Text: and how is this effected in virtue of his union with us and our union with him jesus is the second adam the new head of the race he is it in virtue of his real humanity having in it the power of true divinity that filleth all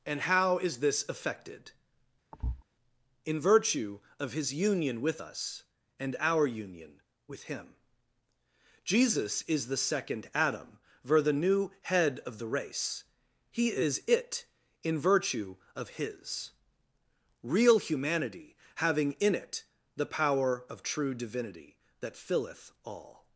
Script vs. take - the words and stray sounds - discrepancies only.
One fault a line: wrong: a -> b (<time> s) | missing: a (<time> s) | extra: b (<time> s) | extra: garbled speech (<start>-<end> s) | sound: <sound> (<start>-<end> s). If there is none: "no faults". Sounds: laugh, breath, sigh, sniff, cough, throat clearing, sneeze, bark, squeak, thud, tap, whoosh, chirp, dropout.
sound: thud (2.3-2.6 s)
extra: ver (11.0 s)